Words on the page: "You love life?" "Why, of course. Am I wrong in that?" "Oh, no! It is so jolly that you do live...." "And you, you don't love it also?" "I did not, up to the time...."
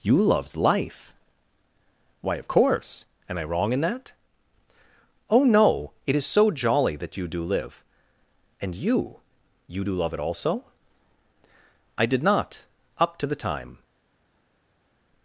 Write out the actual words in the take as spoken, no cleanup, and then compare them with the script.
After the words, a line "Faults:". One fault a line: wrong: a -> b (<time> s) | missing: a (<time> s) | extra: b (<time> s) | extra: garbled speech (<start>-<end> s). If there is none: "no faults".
"You loves life?" "Why, of course. Am I wrong in that?" "Oh, no! It is so jolly that you do live...." "And you, you do love it also?" "I did not, up to the time...."
Faults:
wrong: love -> loves (0.2 s)
wrong: don't -> do (9.8 s)